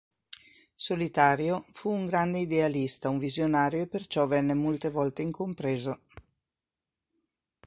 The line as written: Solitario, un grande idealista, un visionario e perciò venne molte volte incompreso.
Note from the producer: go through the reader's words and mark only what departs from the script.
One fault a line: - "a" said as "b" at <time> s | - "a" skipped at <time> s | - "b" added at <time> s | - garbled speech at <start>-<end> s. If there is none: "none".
- "fu" added at 1.7 s